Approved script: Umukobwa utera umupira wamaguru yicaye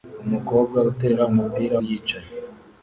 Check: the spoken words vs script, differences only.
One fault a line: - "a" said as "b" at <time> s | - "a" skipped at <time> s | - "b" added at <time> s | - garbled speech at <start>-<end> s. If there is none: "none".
- "wamaguru" skipped at 1.8 s